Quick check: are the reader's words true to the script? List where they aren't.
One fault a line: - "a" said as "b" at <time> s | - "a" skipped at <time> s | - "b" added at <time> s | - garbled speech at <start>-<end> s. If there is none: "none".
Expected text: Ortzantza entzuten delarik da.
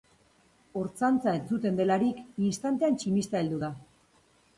- "istantean tximista heldu" added at 2.5 s